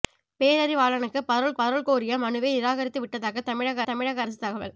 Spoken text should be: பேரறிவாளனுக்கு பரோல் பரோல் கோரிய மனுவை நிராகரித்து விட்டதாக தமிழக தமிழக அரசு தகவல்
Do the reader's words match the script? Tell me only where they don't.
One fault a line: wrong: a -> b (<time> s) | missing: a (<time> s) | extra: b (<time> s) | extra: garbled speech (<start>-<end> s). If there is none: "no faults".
no faults